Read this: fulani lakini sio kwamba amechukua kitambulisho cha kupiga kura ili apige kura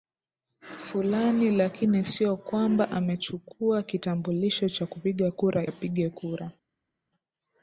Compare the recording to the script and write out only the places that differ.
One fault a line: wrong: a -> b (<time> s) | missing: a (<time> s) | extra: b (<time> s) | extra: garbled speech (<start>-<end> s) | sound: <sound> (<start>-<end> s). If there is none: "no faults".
missing: ili (5.7 s)